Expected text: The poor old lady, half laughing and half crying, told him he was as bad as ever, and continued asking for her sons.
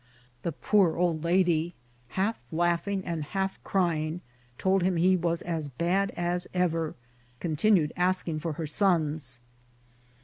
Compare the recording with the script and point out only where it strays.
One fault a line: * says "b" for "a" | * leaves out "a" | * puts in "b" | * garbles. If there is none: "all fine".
* leaves out "and"